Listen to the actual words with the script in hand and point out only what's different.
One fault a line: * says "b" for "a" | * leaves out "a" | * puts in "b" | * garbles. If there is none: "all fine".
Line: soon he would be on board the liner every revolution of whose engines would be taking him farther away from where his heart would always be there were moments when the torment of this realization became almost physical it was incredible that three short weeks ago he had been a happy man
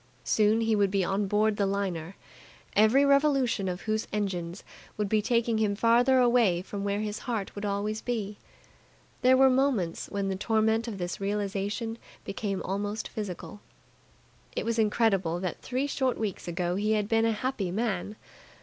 all fine